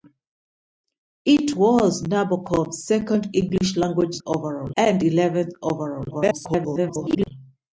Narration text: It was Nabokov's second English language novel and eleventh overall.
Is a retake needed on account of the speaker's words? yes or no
yes